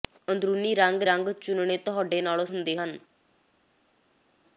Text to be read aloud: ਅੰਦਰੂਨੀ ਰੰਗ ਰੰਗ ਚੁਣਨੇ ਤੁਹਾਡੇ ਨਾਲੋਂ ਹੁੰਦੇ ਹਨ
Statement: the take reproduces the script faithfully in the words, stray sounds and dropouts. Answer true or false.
true